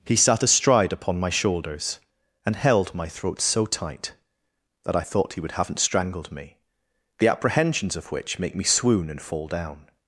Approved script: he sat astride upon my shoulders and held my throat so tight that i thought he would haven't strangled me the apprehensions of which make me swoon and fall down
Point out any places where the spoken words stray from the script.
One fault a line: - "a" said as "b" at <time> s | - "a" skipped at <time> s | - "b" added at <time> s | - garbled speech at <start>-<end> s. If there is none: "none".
none